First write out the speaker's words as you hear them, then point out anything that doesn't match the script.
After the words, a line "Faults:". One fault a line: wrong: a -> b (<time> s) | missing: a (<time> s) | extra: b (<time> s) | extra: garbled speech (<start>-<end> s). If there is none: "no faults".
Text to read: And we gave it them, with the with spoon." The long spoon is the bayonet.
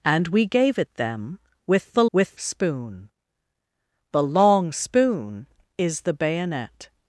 And we gave it them, with the with spoon." The long spoon is the bayonet.
Faults:
no faults